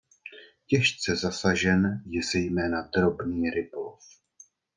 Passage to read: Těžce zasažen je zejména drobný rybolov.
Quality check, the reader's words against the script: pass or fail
pass